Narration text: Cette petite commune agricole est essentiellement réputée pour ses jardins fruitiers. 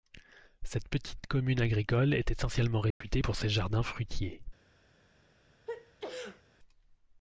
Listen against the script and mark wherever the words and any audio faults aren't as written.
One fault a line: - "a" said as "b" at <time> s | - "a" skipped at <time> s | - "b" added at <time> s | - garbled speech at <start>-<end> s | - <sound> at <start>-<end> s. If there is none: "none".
- dropout at 2.9-3.0 s
- sneeze at 5.7-6.4 s